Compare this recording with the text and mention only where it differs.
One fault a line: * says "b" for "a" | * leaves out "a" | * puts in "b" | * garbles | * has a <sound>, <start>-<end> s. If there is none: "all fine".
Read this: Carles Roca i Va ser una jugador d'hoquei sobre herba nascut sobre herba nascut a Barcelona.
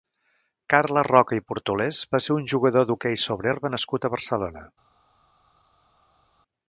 * puts in "Portolés"
* says "un" for "una"
* leaves out "sobre herba nascut"